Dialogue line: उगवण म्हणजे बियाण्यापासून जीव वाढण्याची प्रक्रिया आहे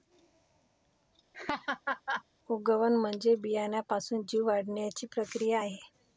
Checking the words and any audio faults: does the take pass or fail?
fail